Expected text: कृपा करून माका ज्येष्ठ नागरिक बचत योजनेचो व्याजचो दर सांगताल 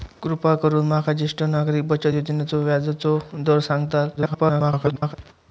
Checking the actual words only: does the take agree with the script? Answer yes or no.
no